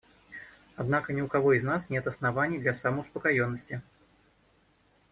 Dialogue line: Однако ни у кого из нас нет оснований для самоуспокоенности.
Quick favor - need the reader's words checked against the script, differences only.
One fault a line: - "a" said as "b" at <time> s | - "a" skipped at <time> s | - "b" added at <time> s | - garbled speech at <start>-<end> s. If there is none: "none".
none